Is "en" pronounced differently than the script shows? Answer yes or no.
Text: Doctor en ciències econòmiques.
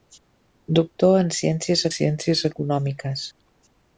no